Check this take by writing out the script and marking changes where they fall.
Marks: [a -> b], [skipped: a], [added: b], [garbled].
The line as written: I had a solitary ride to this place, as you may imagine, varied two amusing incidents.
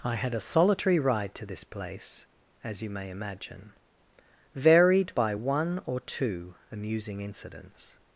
I had a solitary ride to this place, as you may imagine, varied [added: by one or] two amusing incidents.